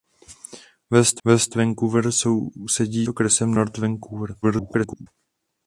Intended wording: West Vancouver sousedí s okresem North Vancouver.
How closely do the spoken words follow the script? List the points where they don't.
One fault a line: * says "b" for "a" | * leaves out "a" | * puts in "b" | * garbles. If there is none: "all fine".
* puts in "west"
* leaves out "s"
* garbles